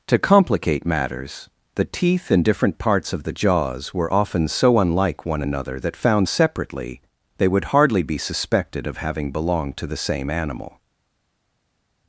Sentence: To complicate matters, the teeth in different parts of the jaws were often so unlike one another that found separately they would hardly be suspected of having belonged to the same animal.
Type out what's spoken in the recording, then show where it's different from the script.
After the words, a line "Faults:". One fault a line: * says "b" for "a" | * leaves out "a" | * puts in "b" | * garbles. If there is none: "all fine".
To complicate matters, the teeth in different parts of the jaws were often so unlike one another that found separately they would hardly be suspected of having belonged to the same animal.
Faults:
all fine